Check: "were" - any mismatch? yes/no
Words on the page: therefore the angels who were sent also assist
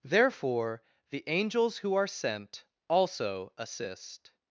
yes